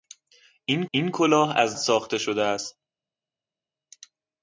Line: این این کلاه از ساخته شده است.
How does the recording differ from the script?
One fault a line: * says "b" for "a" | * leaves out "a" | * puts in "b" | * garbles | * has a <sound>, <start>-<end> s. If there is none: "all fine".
all fine